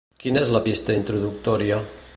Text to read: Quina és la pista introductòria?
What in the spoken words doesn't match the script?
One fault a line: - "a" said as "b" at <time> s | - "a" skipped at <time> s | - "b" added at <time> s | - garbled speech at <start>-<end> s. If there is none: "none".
none